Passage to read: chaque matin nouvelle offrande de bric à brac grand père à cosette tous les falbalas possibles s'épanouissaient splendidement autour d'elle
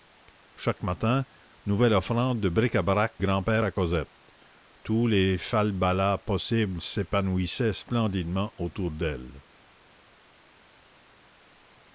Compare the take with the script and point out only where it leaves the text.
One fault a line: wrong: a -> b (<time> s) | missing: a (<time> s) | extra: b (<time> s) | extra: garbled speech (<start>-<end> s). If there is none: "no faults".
no faults